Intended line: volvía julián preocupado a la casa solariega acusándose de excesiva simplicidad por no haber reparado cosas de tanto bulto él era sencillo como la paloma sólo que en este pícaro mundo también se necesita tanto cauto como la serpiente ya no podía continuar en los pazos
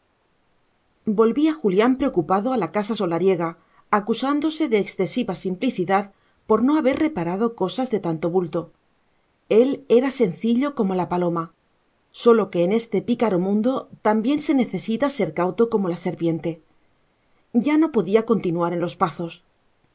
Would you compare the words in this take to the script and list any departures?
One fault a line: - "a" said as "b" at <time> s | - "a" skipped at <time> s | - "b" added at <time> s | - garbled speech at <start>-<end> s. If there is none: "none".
- "tanto" said as "ser" at 15.1 s